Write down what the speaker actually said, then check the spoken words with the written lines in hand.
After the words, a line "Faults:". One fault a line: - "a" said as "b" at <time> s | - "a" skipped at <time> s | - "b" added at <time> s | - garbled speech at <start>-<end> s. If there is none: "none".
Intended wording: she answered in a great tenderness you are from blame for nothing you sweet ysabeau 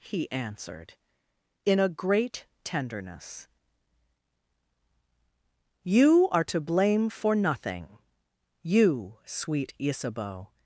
he answered in a great tenderness you are to blame for nothing you sweet ysabeau
Faults:
- "she" said as "he" at 0.0 s
- "from" said as "to" at 6.4 s